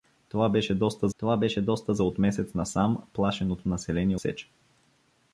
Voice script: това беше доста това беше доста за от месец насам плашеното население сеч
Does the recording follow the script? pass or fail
pass